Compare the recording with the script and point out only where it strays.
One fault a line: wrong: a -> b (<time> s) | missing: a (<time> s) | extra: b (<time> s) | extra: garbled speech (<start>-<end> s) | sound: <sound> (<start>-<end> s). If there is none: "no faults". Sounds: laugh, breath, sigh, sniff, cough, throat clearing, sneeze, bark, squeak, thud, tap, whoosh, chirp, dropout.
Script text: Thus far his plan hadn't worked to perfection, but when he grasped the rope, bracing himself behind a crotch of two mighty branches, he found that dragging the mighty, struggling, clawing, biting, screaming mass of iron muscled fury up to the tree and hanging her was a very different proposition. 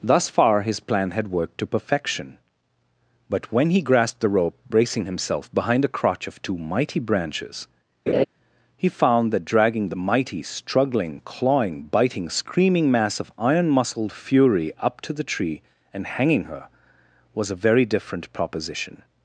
wrong: hadn't -> had (1.1 s)
sound: laugh (8.1-8.2 s)